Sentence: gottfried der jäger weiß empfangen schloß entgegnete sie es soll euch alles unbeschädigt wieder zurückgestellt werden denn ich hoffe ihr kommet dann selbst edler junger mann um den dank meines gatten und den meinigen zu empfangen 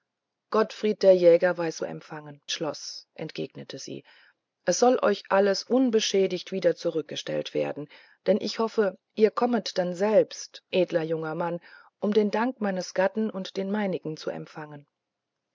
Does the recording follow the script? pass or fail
pass